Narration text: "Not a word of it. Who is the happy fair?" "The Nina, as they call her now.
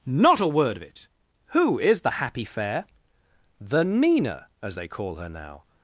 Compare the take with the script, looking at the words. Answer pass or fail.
pass